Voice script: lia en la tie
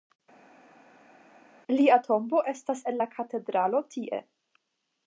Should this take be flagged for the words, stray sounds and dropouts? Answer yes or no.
yes